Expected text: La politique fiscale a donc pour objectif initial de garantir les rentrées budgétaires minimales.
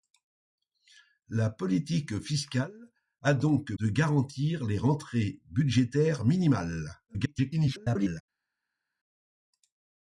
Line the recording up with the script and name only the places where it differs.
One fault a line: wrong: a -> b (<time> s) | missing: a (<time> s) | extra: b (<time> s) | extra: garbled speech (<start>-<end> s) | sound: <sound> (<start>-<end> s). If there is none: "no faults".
missing: pour objectif initial (3.7 s)
extra: garbled speech (7.1-8.2 s)